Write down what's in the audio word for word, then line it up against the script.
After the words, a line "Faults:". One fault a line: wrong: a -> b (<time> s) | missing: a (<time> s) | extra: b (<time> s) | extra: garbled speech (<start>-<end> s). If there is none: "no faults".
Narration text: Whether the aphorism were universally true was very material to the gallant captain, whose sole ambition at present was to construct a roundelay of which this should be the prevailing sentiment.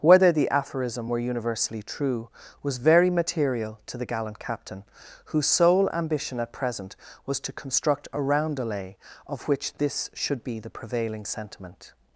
Whether the aphorism were universally true was very material to the gallant captain, whose sole ambition at present was to construct a roundelay of which this should be the prevailing sentiment.
Faults:
no faults